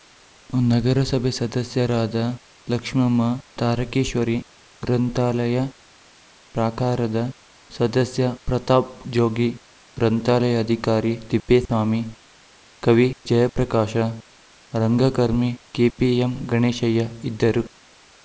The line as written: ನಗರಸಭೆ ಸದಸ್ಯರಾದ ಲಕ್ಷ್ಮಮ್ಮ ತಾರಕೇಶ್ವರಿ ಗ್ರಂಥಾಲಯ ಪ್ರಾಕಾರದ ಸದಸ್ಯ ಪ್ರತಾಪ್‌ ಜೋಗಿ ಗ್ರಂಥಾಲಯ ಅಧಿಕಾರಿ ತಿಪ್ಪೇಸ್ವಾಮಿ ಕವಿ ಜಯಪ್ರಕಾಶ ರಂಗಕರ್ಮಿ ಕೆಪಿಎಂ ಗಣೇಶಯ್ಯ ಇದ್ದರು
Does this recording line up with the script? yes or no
yes